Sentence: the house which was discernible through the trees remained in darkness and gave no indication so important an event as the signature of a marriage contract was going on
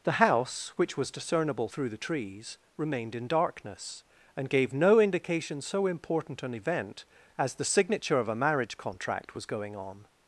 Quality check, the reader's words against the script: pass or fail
pass